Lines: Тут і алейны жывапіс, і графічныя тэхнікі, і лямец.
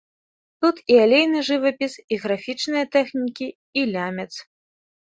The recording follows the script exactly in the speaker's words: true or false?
true